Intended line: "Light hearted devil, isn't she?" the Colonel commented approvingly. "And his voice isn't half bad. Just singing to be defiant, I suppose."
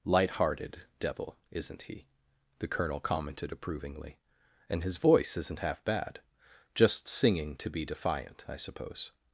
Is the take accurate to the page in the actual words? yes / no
no